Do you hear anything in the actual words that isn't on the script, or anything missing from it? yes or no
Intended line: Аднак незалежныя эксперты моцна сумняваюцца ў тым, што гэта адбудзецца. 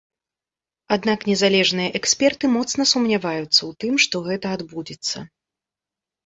no